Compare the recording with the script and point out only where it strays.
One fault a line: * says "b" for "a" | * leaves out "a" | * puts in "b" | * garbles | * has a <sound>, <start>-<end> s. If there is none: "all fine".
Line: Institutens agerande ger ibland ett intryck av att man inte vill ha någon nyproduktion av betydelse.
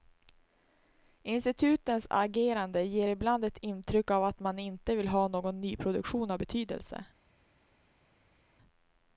all fine